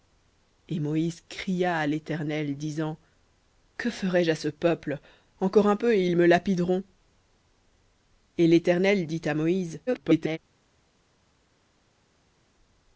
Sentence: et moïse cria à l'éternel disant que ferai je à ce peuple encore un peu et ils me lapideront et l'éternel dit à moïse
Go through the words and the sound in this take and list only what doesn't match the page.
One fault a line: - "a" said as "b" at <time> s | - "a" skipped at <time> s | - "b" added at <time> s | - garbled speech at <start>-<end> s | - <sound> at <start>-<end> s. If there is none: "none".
- garbled speech at 9.9-10.4 s